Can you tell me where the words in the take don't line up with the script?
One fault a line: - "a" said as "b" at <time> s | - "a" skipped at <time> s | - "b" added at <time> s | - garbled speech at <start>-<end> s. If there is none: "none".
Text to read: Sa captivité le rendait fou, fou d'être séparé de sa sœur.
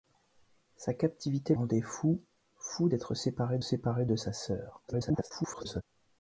- "le" skipped at 1.5 s
- "séparé" added at 3.6 s
- garbled speech at 4.9-5.8 s